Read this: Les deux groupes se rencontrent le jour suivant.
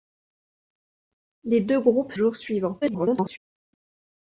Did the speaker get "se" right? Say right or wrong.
wrong